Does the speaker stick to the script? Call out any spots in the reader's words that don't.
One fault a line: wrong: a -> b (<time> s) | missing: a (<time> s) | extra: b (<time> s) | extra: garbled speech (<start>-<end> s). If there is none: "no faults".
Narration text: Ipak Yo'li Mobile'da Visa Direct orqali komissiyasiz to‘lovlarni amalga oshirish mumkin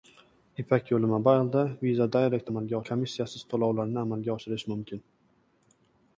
wrong: orqali -> amalga (2.5 s)